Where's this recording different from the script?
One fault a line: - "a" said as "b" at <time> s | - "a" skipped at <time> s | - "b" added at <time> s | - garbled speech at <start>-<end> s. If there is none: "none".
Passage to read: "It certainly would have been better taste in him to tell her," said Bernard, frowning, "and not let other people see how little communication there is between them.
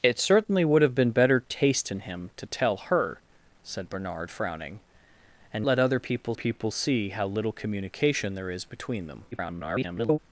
- "not" skipped at 5.7 s
- "people" added at 6.3 s
- garbled speech at 9.3-10.2 s